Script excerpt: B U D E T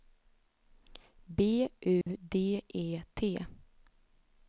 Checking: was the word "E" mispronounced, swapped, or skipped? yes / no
no